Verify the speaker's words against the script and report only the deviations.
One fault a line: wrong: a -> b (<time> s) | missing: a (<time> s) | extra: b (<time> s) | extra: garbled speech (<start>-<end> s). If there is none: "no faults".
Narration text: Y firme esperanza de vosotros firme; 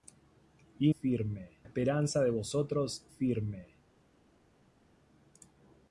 no faults